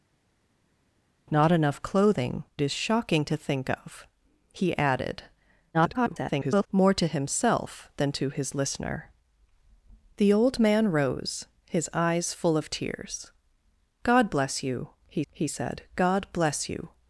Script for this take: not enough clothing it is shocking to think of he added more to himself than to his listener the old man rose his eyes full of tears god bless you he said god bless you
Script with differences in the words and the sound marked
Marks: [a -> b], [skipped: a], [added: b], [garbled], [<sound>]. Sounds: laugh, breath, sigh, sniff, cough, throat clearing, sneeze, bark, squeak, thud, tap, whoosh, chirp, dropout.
not enough clothing [skipped: it] is shocking to think of he added [garbled] more to himself than to his listener the old man rose his eyes full of tears god bless you he [added: he] said god bless you